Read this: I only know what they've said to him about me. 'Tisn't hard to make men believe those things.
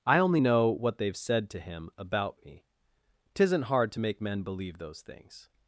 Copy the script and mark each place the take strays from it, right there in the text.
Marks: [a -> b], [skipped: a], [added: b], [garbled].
I only know what they've said to him about me. 'Tisn't hard to make men believe those things.